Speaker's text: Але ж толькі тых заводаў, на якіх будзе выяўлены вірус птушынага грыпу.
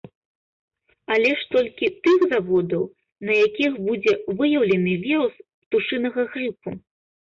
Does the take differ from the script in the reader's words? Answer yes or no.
no